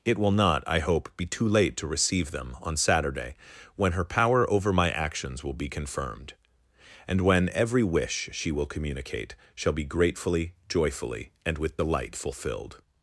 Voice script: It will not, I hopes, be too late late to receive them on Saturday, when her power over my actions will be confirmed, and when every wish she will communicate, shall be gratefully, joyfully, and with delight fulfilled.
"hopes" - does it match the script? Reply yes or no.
no